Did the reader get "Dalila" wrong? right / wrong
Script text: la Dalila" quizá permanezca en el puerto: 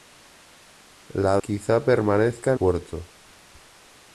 wrong